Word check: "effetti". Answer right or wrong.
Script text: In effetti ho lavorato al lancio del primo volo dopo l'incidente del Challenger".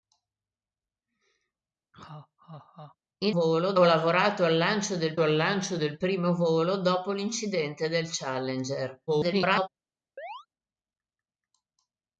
wrong